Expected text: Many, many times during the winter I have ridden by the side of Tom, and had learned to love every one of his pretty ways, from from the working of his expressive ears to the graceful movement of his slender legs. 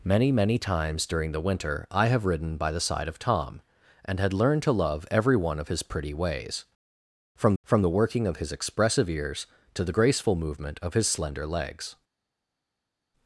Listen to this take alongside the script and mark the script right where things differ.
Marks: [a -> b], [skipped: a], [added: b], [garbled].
Many, many times during the winter I have ridden by the side of Tom, and had learned to love every one of his pretty ways, from from the working of his expressive ears to the graceful movement of his slender legs.